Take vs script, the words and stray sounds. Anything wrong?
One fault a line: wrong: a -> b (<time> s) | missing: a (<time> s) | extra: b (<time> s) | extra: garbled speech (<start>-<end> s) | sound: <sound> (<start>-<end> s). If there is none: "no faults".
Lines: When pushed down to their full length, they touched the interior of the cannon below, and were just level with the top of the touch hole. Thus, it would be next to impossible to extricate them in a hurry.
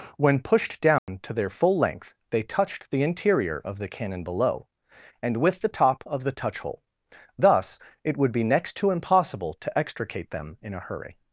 sound: dropout (1.0-1.1 s)
missing: were just level (5.3 s)